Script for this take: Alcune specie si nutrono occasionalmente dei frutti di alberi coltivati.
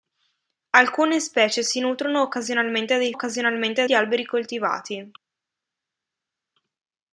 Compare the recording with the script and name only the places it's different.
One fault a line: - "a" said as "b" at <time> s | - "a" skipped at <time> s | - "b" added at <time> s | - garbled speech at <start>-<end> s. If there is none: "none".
- "frutti" said as "occasionalmente" at 3.1 s